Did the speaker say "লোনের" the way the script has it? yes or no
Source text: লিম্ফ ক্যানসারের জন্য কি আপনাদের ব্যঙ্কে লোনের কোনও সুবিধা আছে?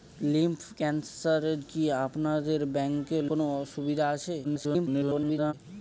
no